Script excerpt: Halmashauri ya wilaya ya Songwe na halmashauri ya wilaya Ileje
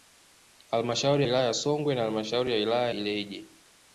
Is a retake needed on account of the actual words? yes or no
no